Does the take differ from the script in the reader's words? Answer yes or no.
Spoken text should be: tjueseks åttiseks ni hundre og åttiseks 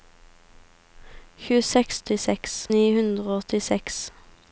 no